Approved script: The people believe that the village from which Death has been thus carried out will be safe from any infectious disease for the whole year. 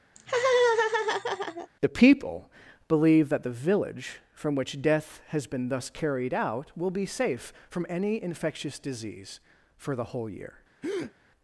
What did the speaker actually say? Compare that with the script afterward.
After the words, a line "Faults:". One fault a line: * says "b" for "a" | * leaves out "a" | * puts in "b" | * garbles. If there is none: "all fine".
The people believe that the village from which Death has been thus carried out will be safe from any infectious disease for the whole year.
Faults:
all fine